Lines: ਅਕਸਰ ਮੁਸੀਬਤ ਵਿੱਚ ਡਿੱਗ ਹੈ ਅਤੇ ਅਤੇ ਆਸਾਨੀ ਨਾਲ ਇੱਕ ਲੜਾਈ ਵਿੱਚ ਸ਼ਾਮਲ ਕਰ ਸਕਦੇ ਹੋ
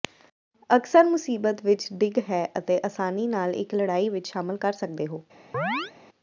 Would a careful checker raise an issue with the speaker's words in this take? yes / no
yes